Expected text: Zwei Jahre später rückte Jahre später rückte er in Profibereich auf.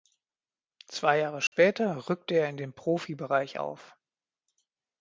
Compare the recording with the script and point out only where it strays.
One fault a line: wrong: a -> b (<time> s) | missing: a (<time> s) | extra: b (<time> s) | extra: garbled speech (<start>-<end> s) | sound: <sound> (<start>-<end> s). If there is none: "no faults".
sound: dropout (1.5-1.5 s)
missing: Jahre später rückte (2.3 s)
extra: den (2.6 s)